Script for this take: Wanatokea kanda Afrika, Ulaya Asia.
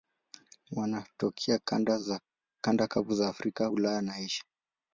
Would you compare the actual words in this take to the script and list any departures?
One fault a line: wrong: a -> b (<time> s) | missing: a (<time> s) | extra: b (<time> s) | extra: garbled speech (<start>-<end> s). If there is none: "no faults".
extra: kavu za (2.9 s)
extra: na (4.0 s)